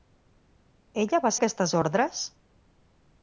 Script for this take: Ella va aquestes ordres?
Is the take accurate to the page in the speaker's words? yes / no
yes